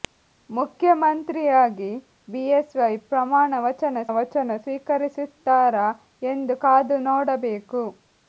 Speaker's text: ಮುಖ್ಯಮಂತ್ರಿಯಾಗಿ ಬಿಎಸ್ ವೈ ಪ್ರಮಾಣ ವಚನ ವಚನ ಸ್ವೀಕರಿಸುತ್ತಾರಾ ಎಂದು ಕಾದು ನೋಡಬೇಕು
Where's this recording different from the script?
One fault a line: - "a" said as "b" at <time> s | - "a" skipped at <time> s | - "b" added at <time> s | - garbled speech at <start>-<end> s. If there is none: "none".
none